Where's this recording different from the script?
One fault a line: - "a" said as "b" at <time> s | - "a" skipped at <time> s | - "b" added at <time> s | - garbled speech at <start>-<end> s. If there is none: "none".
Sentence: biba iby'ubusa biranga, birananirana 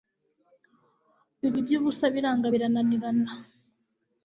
none